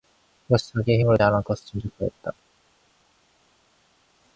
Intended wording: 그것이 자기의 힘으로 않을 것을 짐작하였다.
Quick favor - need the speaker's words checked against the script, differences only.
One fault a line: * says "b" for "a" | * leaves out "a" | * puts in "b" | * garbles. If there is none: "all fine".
all fine